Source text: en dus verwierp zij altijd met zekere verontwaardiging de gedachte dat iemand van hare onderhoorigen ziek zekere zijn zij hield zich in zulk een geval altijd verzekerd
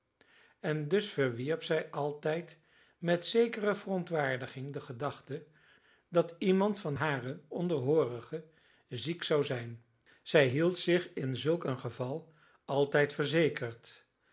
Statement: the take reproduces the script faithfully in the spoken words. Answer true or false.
false